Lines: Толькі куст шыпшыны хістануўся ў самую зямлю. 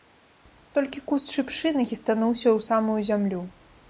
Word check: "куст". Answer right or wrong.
right